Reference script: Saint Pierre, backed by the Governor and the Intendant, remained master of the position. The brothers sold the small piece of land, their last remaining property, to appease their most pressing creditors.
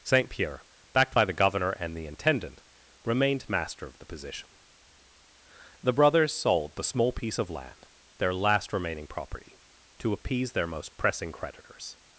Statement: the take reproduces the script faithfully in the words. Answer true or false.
true